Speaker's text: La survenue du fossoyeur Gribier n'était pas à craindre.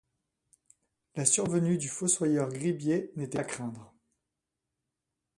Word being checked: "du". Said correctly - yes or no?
yes